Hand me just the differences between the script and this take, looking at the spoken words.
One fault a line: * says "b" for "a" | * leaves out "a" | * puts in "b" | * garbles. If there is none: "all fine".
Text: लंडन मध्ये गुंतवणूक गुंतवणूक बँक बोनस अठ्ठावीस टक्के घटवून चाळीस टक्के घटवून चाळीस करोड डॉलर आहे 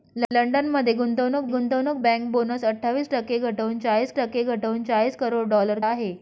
all fine